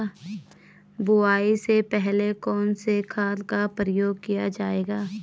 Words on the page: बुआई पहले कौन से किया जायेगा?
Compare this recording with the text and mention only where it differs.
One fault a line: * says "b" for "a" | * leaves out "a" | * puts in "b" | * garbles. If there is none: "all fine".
* puts in "से"
* puts in "खाद का प्रयोग"